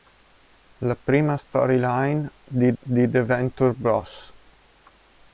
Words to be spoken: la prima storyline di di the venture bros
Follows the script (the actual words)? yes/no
yes